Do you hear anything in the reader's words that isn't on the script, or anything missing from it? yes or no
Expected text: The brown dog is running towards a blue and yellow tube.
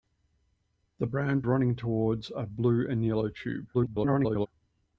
yes